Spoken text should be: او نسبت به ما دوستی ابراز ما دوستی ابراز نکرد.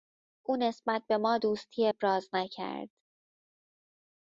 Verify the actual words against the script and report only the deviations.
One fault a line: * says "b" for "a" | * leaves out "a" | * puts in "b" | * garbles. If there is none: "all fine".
* leaves out "ما دوستی ابراز"